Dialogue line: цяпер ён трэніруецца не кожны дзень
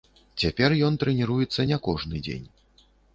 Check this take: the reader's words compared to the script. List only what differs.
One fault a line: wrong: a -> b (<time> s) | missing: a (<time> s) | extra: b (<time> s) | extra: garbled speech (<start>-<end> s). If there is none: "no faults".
no faults